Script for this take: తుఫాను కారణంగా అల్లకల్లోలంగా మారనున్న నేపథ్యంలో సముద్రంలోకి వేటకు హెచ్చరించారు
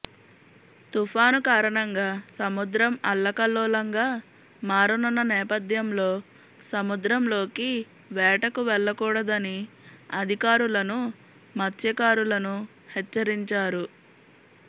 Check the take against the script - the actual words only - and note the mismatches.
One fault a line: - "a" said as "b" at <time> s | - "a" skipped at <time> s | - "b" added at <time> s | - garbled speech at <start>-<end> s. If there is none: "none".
- "సముద్రం" added at 2.3 s
- "వెళ్లకూడదని అధికారులను మత్స్యకారులను" added at 8.7 s